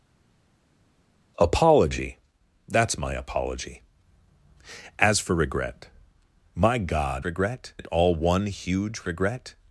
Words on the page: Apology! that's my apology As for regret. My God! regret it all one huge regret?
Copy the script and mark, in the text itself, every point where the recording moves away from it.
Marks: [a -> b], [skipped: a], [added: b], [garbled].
Apology! that's my apology As for regret. My God! regret it all one huge regret?